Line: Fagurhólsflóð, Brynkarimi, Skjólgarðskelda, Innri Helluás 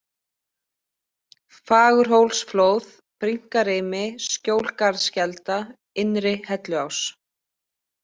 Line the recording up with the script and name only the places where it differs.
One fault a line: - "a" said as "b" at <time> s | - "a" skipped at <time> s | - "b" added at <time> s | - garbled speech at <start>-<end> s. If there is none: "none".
none